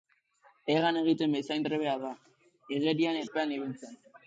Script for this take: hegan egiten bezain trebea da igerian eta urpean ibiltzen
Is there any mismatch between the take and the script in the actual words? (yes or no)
yes